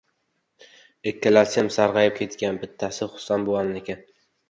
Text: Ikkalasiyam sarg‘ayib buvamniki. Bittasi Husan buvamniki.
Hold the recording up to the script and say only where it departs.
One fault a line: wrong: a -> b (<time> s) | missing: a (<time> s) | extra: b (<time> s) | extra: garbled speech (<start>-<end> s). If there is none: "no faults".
wrong: buvamniki -> ketgan (2.2 s)